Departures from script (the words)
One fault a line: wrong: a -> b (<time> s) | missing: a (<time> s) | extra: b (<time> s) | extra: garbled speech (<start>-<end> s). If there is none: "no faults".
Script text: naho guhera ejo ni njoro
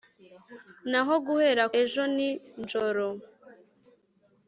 no faults